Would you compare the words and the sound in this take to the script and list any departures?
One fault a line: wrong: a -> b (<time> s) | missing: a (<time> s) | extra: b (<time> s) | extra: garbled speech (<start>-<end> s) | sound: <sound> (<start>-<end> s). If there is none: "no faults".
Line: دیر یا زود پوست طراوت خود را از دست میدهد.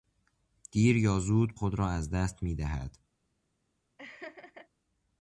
missing: پوست طراوت (1.6 s)
sound: laugh (4.0-4.7 s)